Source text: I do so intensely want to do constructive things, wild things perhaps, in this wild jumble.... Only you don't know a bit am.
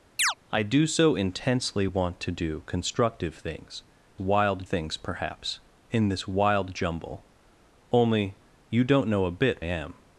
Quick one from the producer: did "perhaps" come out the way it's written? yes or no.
yes